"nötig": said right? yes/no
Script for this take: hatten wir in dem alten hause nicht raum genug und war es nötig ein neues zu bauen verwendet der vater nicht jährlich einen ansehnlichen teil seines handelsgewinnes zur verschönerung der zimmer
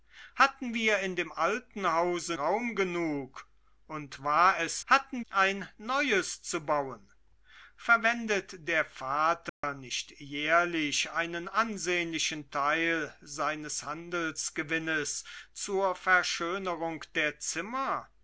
no